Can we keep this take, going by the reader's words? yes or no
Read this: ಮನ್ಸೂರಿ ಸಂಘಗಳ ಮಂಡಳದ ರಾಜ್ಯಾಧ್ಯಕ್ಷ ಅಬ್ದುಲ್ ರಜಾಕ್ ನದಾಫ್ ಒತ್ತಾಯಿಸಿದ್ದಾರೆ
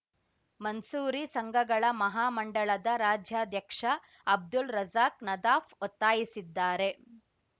no